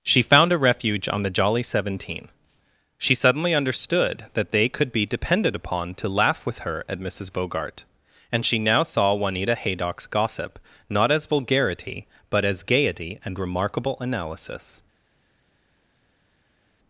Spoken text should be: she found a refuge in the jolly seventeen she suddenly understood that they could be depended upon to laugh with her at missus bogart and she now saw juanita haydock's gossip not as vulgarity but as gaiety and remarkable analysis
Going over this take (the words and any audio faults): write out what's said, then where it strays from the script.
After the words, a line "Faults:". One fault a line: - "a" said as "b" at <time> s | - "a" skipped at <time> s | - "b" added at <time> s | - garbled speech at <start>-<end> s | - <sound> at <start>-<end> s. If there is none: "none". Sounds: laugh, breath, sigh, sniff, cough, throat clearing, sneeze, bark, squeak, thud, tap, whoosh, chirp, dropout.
she found a refuge on the jolly seventeen she suddenly understood that they could be depended upon to laugh with her at missus bogart and she now saw juanita haydock's gossip not as vulgarity but as gaiety and remarkable analysis
Faults:
- "in" said as "on" at 1.1 s